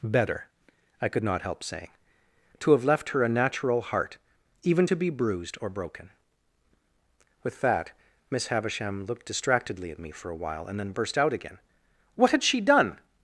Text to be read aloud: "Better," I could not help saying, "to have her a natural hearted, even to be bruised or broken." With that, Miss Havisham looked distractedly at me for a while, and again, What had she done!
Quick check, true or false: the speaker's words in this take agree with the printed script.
false